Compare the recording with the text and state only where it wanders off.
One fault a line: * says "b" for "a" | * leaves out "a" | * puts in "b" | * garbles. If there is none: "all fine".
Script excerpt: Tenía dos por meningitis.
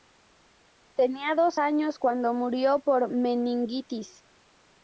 * puts in "años cuando murió"